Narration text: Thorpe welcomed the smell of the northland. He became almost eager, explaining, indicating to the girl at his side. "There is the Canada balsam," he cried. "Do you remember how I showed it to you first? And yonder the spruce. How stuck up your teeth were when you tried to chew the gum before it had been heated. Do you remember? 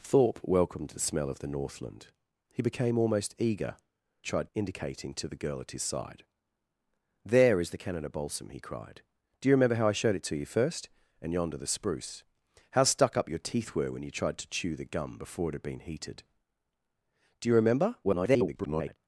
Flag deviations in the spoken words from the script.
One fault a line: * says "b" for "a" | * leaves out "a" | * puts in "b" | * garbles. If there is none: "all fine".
* says "tried" for "explaining"
* garbles